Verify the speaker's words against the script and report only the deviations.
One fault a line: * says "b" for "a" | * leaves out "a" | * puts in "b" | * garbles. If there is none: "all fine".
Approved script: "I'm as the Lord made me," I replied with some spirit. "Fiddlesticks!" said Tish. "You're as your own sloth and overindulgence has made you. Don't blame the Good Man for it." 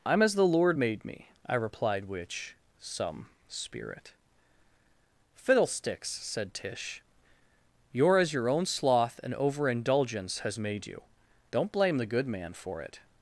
* says "which" for "with"